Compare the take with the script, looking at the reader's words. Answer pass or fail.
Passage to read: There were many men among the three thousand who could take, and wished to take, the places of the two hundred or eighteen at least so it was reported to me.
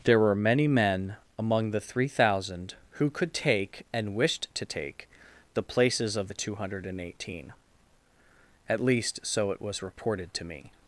fail